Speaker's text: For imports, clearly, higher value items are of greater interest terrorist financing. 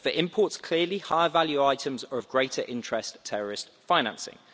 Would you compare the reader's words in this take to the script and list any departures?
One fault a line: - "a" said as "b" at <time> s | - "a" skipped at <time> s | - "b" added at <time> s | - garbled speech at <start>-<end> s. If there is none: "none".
none